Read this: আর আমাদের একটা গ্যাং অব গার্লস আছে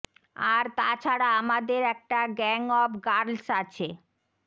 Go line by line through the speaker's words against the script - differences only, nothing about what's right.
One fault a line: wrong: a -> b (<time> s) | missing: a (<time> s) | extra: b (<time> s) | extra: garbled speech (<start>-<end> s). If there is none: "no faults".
extra: তা ছাড়া (0.8 s)